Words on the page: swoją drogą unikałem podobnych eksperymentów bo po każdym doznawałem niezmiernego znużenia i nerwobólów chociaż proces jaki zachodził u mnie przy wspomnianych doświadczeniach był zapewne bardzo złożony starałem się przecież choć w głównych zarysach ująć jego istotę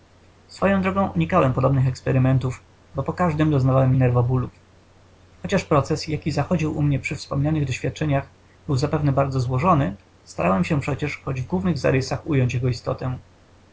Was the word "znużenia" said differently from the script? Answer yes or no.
yes